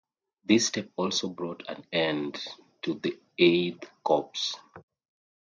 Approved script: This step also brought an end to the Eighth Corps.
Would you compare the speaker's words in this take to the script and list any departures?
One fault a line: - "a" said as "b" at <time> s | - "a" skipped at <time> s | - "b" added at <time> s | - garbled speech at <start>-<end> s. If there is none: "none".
none